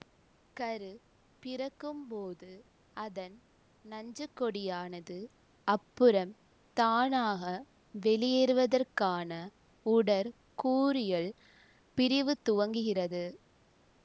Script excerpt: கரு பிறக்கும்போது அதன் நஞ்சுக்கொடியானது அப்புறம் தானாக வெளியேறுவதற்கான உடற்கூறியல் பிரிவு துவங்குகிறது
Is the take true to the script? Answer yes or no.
yes